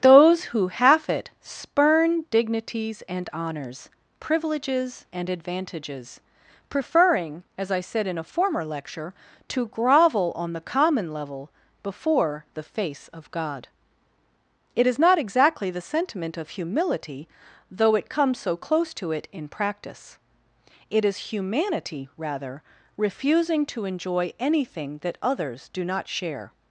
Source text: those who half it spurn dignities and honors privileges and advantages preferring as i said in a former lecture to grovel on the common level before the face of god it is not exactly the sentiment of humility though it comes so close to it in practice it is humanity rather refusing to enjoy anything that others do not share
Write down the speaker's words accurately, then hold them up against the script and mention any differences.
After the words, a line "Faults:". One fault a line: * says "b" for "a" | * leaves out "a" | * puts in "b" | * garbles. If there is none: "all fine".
those who half it spurn dignities and honors privileges and advantages preferring as i said in a former lecture to grovel on the common level before the face of god it is not exactly the sentiment of humility though it comes so close to it in practice it is humanity rather refusing to enjoy anything that others do not share
Faults:
all fine